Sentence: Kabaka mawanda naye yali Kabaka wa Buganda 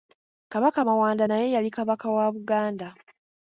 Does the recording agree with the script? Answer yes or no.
yes